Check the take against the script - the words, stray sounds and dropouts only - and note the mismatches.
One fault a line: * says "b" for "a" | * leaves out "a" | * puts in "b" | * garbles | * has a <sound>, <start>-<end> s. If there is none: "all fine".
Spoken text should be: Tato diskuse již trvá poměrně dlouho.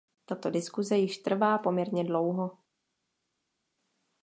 all fine